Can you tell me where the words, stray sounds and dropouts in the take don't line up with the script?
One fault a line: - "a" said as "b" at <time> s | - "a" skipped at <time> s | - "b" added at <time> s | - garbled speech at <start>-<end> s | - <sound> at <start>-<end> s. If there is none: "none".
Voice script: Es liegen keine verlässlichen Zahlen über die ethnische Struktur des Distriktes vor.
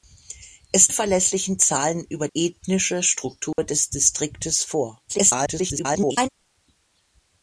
- "liegen keine" skipped at 0.9 s
- "die" skipped at 2.3 s
- dropout at 3.5-3.6 s
- garbled speech at 5.1-6.3 s